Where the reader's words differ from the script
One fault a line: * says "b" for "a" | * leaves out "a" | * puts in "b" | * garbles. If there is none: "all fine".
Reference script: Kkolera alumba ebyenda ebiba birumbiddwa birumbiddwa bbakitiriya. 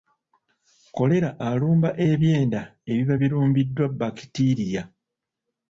* leaves out "birumbiddwa"